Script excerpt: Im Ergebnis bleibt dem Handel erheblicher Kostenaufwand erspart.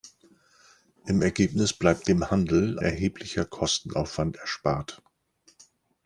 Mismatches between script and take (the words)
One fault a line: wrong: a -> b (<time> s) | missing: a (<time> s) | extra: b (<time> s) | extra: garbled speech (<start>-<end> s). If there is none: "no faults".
no faults